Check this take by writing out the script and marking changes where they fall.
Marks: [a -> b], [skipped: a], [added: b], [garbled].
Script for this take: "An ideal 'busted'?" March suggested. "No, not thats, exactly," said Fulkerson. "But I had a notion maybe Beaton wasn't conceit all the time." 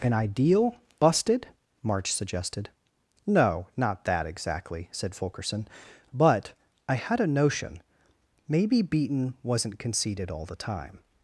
"An ideal 'busted'?" March suggested. "No, not [thats, -> that] exactly," said Fulkerson. "But I had a notion maybe Beaton wasn't [conceit -> conceited] all the time."